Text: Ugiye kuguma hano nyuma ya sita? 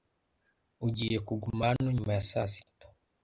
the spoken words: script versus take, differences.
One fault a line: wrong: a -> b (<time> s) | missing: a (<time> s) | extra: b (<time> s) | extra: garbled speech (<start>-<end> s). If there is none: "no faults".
extra: saa (2.3 s)